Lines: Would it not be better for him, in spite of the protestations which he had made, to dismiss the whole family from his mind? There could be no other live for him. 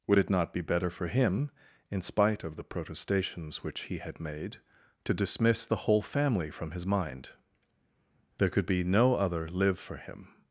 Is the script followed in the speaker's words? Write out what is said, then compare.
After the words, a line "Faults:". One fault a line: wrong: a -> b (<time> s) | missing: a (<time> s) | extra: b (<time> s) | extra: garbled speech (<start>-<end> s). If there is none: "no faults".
Would it not be better for him, in spite of the protestations which he had made, to dismiss the whole family from his mind? There could be no other live for him.
Faults:
no faults